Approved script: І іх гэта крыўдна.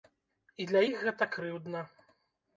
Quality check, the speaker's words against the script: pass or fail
fail